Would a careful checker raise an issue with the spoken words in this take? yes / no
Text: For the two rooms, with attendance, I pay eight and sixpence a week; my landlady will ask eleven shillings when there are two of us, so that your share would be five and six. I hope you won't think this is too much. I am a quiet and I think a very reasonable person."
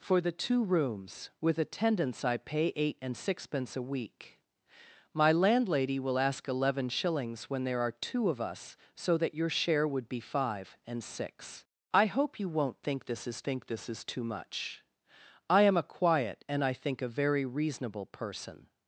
yes